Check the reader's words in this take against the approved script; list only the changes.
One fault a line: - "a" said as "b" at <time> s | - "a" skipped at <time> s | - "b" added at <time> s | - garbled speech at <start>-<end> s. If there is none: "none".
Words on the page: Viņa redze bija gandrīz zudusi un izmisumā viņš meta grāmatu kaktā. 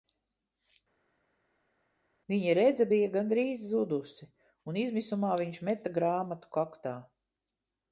none